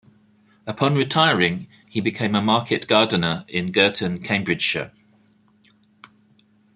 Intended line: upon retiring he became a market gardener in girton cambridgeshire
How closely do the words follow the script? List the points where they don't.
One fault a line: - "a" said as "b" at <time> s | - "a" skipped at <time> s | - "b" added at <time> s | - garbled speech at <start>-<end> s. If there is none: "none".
none